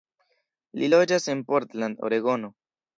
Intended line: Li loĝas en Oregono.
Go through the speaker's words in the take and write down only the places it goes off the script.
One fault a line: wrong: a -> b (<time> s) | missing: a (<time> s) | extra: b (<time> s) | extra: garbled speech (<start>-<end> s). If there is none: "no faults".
extra: Portland (1.5 s)